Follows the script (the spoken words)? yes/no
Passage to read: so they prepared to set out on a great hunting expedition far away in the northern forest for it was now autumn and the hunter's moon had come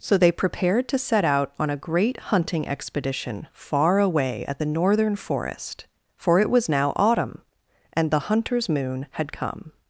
no